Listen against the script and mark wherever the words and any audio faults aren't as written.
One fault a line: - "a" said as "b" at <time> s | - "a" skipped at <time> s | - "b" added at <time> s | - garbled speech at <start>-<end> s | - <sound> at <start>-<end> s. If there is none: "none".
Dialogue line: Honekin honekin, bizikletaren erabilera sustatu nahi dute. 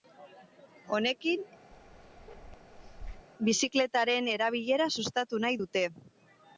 - "honekin" skipped at 1.4 s
- bark at 1.7-3.3 s